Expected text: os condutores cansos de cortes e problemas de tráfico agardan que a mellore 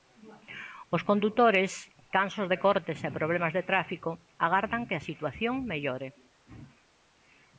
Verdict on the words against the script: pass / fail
fail